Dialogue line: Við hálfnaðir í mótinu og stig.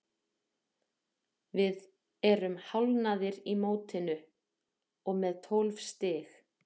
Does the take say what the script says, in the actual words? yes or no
no